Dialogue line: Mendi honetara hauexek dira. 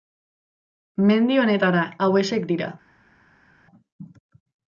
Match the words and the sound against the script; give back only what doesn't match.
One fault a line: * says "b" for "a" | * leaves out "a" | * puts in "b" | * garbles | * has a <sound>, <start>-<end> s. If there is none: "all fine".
all fine